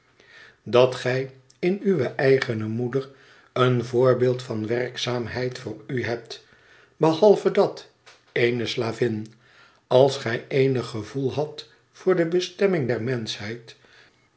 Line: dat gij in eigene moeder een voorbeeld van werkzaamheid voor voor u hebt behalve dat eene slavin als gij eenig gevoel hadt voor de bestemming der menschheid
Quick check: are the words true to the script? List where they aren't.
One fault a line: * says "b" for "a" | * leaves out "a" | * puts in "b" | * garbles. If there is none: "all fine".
* puts in "uwe"
* leaves out "voor"